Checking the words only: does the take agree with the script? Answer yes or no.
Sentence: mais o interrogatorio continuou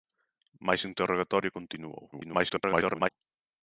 no